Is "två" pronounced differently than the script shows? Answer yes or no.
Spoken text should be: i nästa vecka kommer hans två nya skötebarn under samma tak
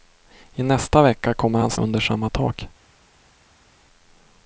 yes